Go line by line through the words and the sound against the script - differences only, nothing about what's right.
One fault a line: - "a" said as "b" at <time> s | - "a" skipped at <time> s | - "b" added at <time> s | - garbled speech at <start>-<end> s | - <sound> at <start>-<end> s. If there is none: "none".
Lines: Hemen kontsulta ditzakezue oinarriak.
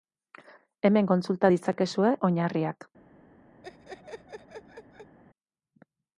- laugh at 3.6-5.2 s